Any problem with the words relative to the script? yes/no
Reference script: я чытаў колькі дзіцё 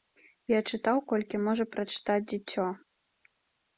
yes